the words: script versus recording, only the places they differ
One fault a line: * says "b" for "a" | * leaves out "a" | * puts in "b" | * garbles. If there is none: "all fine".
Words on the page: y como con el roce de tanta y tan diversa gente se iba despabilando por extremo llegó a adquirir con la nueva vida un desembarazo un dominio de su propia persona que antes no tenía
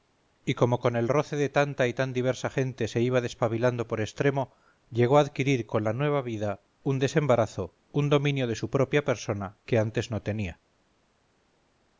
all fine